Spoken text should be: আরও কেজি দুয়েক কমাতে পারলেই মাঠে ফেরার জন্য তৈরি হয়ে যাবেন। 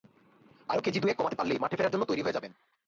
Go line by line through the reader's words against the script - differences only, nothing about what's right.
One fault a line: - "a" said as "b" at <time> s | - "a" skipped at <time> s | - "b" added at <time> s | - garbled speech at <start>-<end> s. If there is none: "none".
none